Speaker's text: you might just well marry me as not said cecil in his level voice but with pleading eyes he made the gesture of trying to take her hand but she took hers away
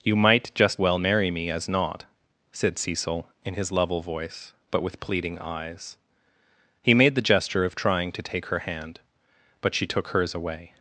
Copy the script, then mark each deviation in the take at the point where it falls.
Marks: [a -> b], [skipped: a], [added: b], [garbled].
you might just well marry me as not said cecil in his level voice but with pleading eyes he made the gesture of trying to take her hand but she took hers away